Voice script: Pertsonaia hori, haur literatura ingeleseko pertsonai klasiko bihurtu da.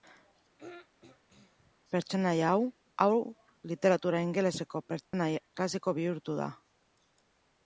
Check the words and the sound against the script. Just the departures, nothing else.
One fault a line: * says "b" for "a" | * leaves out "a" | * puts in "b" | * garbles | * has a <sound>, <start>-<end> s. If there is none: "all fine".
* has a throat clearing, 0.6-1.7 s
* says "hau" for "hori"
* has a dropout, 5.0-5.1 s